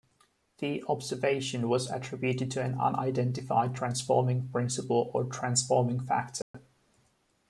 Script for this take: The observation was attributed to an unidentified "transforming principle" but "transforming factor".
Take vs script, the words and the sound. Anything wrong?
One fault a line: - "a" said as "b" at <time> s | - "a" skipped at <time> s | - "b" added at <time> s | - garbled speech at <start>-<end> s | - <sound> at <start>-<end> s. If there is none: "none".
- "but" said as "or" at 5.1 s
- dropout at 6.4-6.5 s